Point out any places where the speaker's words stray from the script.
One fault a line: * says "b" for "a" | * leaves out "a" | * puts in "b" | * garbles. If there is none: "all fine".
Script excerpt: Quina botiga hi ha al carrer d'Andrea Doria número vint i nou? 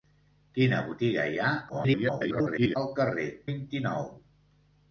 * garbles
* leaves out "d'Andrea Doria número"